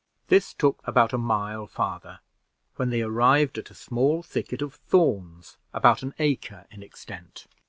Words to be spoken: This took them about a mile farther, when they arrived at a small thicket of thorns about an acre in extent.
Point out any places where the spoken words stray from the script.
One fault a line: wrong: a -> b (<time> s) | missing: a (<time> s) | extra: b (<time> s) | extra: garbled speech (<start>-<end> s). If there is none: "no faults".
missing: them (0.8 s)